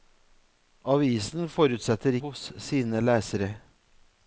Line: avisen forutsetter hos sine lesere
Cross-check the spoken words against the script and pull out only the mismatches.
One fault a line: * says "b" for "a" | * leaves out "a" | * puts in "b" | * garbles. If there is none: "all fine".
all fine